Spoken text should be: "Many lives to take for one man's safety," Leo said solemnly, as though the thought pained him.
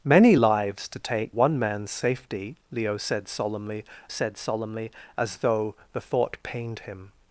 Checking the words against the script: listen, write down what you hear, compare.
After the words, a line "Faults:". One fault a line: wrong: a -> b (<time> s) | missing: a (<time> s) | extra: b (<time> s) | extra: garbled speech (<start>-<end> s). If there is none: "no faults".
"Many lives to take one man's safety," Leo said solemnly said solemnly, as though the thought pained him.
Faults:
missing: for (1.3 s)
extra: said solemnly (4.1 s)